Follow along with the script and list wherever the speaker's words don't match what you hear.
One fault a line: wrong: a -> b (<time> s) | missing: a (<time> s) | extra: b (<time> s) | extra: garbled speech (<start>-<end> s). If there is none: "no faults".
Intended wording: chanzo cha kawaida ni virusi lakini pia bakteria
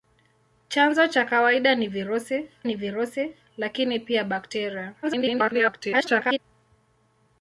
extra: ni virusi (2.6 s)
extra: garbled speech (5.0-6.4 s)